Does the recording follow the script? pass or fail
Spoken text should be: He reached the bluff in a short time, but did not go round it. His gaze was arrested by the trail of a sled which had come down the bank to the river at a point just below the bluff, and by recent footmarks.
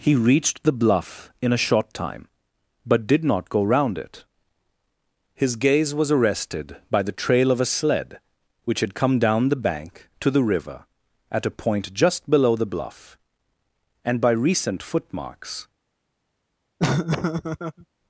pass